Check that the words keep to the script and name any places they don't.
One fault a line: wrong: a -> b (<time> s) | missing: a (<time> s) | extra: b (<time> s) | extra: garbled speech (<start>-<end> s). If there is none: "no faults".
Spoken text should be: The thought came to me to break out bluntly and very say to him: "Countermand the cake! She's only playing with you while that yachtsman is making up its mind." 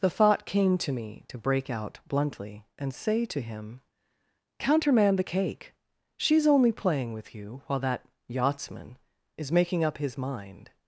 missing: very (2.9 s)
wrong: its -> his (10.0 s)